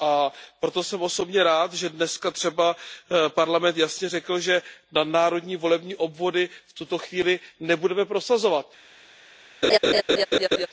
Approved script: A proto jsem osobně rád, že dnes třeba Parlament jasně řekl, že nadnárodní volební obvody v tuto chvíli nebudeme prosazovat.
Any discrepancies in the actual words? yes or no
no